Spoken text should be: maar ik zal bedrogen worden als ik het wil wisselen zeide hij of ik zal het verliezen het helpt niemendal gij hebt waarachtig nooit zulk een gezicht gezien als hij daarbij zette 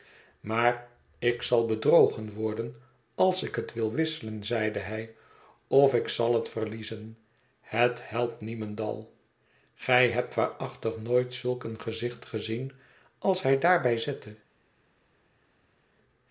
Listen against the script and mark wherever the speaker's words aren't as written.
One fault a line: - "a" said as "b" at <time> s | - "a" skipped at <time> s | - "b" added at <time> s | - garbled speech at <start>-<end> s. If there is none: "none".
none